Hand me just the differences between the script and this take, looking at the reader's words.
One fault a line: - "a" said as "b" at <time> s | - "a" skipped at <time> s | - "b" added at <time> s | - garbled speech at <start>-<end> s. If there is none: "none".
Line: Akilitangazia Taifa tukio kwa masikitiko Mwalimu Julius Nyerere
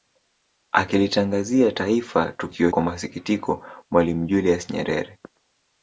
none